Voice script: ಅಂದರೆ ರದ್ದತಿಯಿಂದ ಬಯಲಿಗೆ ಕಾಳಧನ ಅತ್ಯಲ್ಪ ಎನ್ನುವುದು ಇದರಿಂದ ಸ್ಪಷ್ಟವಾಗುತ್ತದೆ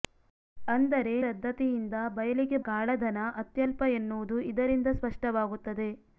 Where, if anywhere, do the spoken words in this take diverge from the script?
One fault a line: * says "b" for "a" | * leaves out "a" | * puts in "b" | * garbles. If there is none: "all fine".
all fine